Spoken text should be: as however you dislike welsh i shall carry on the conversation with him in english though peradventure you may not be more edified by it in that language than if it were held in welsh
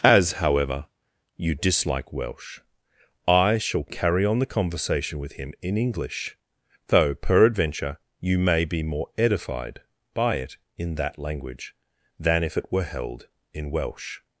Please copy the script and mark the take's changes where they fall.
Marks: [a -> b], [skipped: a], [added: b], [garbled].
as however you dislike welsh i shall carry on the conversation with him in english though peradventure you may [skipped: not] be more edified by it in that language than if it were held in welsh